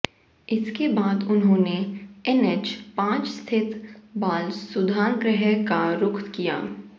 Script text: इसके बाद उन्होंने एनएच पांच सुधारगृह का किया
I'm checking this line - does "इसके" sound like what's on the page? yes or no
yes